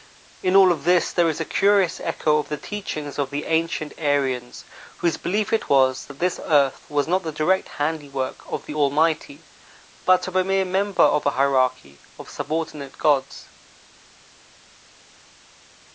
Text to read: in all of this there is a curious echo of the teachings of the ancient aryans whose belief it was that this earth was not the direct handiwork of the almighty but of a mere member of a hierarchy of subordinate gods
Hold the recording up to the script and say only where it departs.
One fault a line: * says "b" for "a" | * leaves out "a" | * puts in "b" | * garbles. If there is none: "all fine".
all fine